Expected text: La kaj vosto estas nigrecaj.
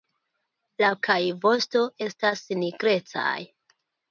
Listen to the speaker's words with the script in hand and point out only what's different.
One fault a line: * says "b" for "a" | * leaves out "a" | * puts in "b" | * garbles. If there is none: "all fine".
all fine